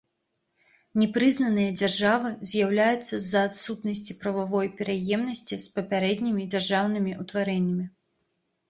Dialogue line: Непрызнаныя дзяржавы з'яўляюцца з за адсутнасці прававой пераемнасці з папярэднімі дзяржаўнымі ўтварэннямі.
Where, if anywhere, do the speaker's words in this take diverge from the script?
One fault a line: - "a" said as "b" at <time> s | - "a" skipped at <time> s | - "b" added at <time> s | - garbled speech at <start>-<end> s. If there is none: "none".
none